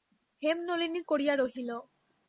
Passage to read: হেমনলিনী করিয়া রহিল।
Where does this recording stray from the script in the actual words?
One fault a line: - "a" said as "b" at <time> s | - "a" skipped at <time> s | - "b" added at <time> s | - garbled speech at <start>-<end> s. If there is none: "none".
none